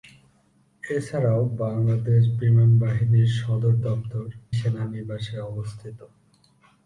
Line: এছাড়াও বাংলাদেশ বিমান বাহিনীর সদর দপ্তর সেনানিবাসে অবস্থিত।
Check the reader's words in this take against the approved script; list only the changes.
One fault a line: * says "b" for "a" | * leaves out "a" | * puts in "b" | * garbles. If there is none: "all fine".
all fine